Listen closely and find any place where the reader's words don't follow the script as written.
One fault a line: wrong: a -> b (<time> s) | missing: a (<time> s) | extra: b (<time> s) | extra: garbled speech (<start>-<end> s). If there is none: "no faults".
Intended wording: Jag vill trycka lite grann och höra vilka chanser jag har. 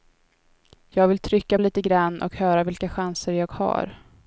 no faults